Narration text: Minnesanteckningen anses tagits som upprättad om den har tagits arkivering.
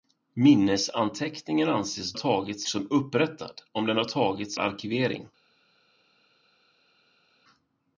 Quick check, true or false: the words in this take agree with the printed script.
true